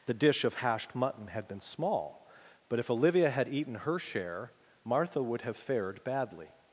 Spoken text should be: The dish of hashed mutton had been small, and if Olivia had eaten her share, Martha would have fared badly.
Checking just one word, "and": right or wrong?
wrong